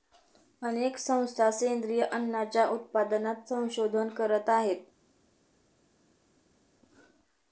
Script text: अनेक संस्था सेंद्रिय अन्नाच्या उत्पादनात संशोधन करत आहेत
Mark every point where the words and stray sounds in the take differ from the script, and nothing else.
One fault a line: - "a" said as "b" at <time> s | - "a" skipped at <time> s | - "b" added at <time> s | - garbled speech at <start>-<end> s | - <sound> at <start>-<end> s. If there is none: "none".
none